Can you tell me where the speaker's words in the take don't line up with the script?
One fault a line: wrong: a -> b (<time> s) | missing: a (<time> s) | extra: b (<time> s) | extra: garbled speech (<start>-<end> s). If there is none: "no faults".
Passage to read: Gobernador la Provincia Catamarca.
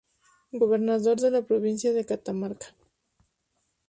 extra: de (1.2 s)
extra: de (1.9 s)